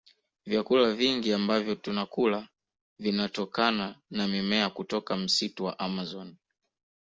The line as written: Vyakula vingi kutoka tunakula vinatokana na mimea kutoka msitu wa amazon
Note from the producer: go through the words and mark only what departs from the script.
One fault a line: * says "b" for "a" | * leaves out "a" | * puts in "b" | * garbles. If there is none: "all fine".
* says "ambavyo" for "kutoka"